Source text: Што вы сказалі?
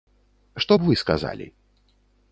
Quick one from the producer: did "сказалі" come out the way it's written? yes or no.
yes